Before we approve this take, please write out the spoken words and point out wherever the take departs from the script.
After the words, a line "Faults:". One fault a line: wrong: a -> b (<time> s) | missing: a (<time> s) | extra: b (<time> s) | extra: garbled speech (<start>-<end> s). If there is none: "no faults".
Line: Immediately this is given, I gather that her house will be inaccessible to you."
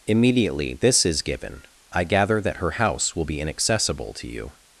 Immediately this is given, I gather that her house will be inaccessible to you."
Faults:
no faults